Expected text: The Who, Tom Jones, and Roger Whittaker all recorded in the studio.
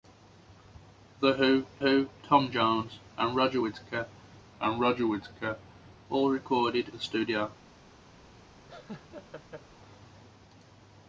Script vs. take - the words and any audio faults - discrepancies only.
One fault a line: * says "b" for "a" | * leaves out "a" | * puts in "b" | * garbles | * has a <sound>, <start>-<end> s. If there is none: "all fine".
* puts in "Who"
* puts in "and Roger Whittaker"
* leaves out "in"
* has a laugh, 8.7-9.7 s